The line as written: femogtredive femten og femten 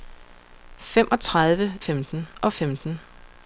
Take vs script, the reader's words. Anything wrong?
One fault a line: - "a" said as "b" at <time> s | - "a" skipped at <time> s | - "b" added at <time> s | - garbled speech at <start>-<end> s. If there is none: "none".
none